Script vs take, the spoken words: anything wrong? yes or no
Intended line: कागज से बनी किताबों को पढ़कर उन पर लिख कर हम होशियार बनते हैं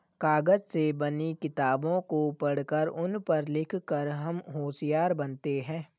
no